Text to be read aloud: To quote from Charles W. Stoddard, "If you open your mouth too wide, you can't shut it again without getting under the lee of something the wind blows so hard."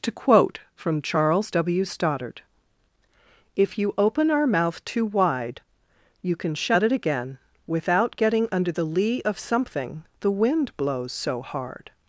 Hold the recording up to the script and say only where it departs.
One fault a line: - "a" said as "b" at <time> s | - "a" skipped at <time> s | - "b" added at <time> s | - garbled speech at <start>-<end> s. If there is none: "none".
- "your" said as "our" at 4.3 s
- "can't" said as "can" at 6.4 s